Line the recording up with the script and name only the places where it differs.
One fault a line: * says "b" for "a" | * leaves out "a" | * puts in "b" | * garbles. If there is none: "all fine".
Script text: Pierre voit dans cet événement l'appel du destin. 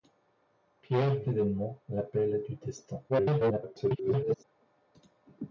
* leaves out "voit dans cet"
* garbles